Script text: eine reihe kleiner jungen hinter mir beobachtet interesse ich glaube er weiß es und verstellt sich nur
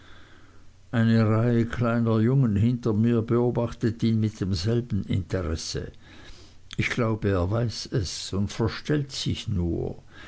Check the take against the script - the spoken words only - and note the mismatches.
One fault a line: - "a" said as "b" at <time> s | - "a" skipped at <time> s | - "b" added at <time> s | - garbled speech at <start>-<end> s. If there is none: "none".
- "ihn mit demselben" added at 4.0 s